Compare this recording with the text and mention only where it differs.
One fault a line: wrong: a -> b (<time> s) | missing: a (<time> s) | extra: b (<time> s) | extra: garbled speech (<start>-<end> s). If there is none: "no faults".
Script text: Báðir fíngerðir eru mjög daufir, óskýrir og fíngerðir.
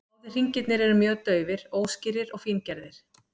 wrong: fíngerðir -> hringirnir (0.4 s)